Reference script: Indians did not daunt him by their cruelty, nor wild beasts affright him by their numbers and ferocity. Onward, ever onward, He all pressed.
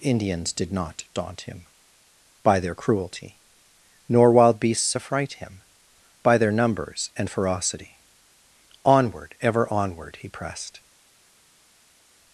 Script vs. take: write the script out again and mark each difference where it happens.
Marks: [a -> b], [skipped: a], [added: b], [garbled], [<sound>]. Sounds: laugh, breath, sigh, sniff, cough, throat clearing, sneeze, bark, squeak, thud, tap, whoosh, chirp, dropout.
Indians did not daunt him by their cruelty, nor wild beasts affright him by their numbers and ferocity. Onward, ever onward, He [skipped: all] pressed.